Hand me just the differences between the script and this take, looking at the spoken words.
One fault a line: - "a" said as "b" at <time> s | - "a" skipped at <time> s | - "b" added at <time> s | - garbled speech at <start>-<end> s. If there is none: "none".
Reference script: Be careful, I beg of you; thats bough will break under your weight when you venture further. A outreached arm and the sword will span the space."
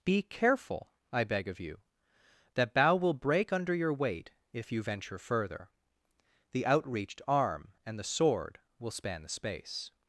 - "thats" said as "that" at 2.5 s
- "when" said as "if" at 4.5 s
- "A" said as "The" at 6.5 s